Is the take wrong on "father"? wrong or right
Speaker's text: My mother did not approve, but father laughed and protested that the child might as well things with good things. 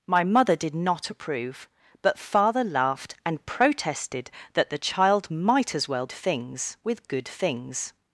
right